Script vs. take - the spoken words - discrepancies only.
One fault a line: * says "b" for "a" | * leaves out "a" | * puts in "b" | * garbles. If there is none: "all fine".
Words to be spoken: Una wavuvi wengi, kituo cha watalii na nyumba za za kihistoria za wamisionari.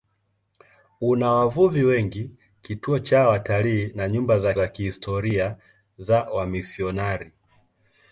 all fine